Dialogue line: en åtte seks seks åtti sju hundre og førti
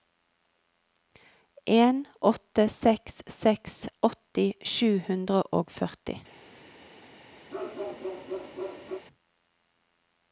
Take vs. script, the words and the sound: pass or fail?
fail